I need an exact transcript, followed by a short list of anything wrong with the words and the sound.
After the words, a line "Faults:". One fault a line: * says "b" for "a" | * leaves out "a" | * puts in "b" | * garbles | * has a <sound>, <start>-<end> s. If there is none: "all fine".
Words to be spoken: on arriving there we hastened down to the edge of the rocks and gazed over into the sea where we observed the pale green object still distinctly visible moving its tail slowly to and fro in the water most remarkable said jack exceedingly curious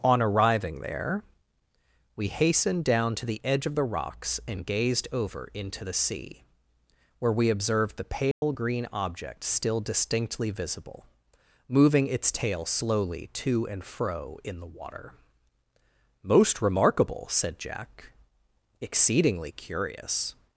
on arriving there we hastened down to the edge of the rocks and gazed over into the sea where we observed the pale green object still distinctly visible moving its tail slowly to and fro in the water most remarkable said jack exceedingly curious
Faults:
* has a dropout, 8.3-8.4 s